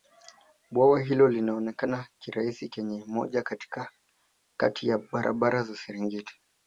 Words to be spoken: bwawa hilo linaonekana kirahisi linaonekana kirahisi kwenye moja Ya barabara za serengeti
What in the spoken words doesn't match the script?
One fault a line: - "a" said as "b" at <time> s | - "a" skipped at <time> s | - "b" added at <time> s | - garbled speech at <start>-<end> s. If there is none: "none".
- "linaonekana kirahisi" skipped at 2.7 s
- "Kati" added at 4.6 s